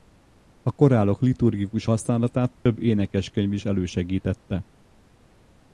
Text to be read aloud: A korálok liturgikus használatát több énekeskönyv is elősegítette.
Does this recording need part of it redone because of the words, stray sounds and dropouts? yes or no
yes